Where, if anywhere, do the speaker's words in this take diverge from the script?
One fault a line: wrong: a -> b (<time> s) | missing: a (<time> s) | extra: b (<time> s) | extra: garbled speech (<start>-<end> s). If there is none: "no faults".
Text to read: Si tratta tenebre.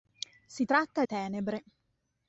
no faults